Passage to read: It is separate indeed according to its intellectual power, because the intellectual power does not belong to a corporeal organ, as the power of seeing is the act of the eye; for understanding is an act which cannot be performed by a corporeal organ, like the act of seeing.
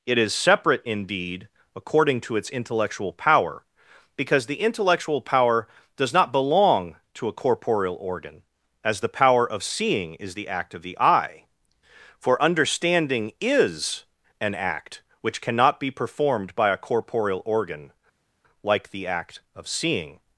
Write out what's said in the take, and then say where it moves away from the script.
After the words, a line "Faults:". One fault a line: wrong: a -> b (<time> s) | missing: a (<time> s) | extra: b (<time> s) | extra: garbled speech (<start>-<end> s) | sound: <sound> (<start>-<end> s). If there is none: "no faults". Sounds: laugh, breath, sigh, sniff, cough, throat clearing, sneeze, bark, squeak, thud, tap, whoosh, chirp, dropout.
It is separate indeed according to its intellectual power, because the intellectual power does not belong to a corporeal organ, as the power of seeing is the act of the eye; for understanding is an act which cannot be performed by a corporeal organ, like the act of seeing.
Faults:
no faults